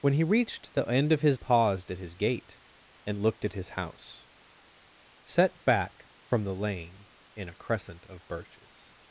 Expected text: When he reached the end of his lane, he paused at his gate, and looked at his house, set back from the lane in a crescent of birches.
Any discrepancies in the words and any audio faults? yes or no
yes